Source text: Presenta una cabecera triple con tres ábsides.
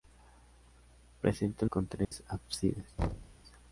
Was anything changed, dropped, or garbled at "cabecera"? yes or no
yes